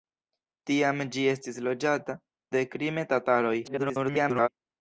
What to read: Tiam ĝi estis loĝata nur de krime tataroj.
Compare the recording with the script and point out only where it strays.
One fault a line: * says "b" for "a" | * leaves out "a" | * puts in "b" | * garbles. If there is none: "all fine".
* leaves out "nur"
* garbles